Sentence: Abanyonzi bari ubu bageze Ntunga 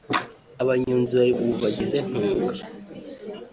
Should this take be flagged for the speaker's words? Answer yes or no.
no